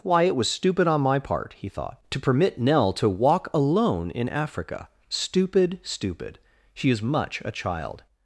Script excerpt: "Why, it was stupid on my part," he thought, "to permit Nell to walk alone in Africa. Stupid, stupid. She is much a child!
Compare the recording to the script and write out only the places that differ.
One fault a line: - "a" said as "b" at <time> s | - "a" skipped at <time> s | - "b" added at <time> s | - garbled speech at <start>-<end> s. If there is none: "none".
none